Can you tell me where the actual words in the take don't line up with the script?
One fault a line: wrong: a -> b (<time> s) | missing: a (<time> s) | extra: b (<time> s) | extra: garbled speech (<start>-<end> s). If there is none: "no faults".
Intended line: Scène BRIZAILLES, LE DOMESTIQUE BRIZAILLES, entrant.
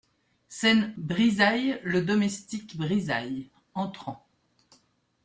no faults